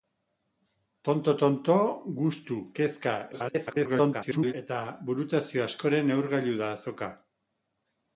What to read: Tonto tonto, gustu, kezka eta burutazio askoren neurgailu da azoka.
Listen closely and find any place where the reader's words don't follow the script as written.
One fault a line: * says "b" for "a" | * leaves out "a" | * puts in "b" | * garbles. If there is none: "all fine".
* garbles